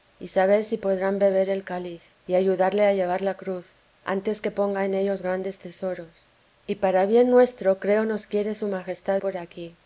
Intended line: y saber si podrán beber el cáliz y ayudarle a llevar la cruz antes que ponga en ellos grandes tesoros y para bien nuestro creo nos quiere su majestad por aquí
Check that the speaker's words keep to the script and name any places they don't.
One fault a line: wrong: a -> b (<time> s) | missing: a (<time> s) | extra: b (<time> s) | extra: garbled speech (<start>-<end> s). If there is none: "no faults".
no faults